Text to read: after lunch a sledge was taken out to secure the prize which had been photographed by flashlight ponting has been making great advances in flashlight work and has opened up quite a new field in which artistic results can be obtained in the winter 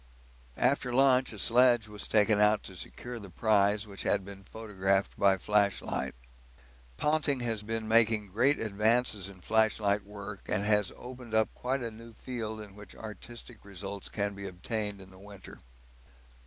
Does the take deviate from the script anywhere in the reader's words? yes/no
no